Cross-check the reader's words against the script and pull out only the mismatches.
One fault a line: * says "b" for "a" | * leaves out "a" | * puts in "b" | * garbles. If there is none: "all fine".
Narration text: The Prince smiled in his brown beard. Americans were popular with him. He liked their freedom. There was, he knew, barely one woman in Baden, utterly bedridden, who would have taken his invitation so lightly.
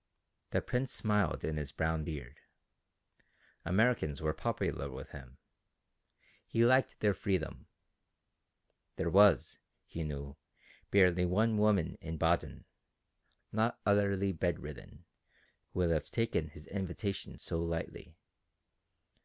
* puts in "not"